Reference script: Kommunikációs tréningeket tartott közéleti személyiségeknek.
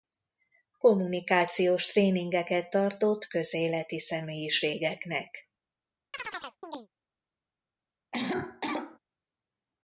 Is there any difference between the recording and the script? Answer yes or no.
no